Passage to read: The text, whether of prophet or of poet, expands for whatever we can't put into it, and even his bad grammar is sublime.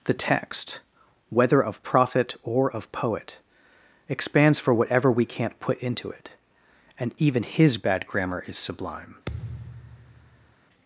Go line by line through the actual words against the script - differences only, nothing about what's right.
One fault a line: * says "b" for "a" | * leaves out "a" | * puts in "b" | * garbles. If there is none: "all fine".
all fine